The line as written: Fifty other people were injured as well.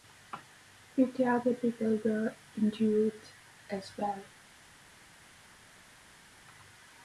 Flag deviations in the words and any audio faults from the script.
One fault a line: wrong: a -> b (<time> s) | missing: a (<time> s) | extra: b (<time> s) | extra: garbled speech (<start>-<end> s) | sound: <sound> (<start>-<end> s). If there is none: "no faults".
no faults